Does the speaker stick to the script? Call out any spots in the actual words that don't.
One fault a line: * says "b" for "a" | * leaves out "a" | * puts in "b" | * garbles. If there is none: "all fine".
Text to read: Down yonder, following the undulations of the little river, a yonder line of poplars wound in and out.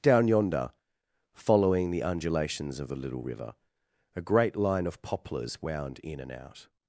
* says "great" for "yonder"